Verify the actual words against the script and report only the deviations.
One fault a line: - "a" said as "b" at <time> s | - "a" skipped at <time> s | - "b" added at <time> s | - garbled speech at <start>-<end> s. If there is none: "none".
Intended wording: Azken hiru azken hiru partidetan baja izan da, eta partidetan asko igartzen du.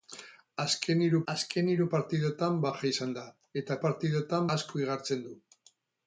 none